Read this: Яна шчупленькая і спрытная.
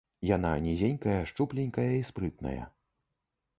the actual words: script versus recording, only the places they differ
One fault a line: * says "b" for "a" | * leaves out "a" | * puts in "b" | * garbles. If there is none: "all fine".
* puts in "нізенькая"